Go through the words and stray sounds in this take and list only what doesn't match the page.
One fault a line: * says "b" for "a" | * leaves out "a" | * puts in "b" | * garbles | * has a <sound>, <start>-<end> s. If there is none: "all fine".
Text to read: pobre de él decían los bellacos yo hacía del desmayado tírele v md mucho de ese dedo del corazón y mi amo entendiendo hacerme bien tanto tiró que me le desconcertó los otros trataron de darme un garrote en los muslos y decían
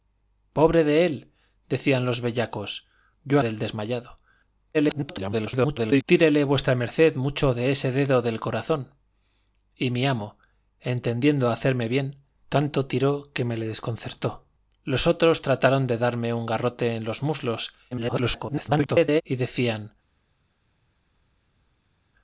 * leaves out "hacía"
* garbles
* garbles